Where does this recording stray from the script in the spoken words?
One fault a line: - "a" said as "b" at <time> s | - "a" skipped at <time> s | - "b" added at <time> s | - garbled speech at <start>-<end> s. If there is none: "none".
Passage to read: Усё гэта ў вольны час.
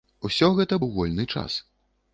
none